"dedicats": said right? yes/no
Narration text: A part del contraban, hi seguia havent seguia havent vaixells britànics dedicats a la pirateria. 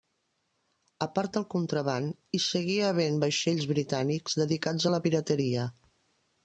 yes